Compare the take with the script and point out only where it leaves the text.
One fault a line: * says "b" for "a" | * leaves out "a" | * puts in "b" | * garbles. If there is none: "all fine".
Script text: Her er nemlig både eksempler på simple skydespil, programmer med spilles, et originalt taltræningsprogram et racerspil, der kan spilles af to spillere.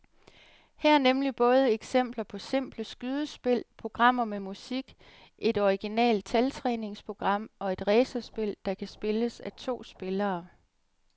* says "musik" for "spilles"
* puts in "og"